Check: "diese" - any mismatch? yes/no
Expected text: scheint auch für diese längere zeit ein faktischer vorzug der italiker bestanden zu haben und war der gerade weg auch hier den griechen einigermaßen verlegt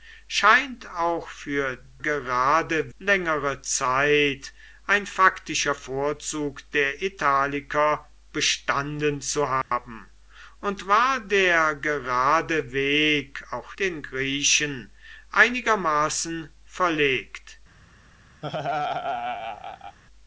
yes